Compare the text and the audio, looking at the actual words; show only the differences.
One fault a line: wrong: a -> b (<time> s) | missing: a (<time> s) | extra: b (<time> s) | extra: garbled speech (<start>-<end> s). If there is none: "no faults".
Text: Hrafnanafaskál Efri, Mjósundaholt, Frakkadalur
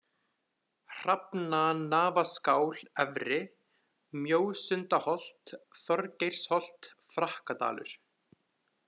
extra: Þorgeirsholt (5.8 s)